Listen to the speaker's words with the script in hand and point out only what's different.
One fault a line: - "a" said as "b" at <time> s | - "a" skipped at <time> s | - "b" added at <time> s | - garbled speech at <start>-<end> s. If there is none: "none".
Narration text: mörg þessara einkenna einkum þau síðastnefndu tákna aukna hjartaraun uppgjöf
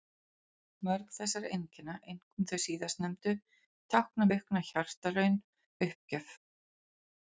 none